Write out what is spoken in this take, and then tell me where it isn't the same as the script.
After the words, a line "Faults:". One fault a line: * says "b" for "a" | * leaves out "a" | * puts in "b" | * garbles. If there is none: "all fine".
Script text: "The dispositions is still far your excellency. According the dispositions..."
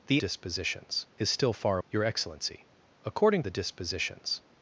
"The dispositions is still far your excellency. According the dispositions..."
Faults:
all fine